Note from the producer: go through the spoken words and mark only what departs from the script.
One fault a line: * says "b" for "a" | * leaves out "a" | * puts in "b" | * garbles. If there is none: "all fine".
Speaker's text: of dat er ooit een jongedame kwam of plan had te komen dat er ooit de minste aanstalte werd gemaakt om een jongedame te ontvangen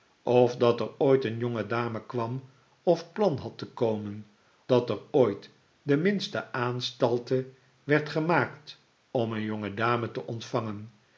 all fine